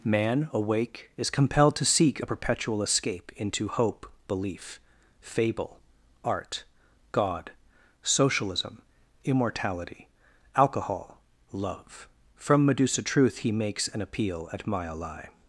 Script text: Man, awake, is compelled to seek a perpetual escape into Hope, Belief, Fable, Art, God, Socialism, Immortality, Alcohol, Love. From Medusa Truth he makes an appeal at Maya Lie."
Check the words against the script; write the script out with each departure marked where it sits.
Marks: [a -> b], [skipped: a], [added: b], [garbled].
Man, awake, is compelled to seek a perpetual escape into Hope, Belief, Fable, Art, God, Socialism, Immortality, Alcohol, Love. From Medusa Truth he makes an appeal at Maya Lie."